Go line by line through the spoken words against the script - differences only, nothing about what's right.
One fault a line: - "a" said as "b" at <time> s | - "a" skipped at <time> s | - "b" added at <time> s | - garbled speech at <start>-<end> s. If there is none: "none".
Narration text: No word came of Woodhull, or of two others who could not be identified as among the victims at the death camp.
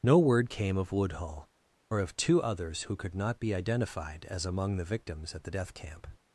none